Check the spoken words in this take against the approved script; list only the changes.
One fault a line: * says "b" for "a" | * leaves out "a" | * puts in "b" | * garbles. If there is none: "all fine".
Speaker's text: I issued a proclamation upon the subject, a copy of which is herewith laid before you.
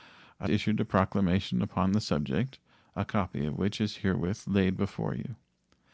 all fine